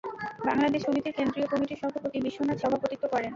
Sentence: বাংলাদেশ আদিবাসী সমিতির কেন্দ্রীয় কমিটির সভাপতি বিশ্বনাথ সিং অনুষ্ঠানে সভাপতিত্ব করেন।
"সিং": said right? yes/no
no